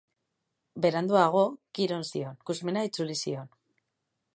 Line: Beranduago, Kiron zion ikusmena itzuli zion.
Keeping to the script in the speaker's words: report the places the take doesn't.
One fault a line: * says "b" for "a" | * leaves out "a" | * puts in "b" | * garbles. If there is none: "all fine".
all fine